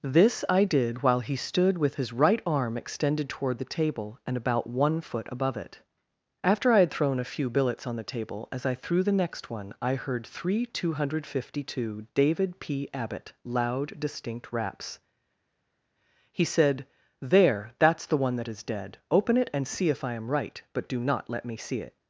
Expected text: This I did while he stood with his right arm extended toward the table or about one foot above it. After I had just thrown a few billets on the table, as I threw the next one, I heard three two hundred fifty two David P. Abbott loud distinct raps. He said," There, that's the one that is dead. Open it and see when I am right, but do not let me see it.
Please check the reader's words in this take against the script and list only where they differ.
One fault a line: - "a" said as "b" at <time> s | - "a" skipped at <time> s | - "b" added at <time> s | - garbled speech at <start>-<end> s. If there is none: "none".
- "or" said as "and" at 4.3 s
- "just" skipped at 6.9 s
- "when" said as "if" at 19.9 s